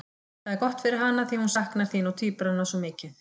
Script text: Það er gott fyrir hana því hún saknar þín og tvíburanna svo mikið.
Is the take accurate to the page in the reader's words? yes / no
yes